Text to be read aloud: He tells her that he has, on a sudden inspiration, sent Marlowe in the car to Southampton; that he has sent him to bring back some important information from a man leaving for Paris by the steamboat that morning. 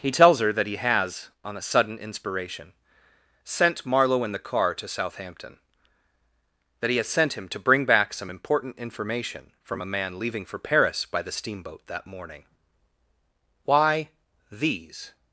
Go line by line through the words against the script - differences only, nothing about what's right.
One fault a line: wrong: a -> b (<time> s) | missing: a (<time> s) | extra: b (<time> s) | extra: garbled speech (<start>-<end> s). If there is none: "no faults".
extra: Why these (13.6 s)